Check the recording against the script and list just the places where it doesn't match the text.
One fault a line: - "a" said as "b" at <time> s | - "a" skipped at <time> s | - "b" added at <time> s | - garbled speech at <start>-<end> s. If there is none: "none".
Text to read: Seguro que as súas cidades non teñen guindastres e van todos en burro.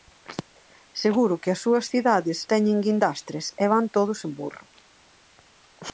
- "non" skipped at 2.4 s